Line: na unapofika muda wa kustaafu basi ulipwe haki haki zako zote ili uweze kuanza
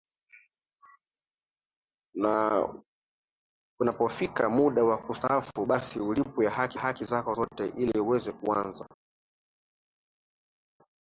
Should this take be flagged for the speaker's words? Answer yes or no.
no